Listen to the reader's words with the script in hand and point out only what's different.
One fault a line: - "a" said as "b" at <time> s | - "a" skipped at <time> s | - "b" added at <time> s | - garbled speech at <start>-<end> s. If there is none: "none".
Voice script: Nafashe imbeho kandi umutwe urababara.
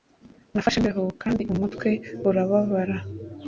none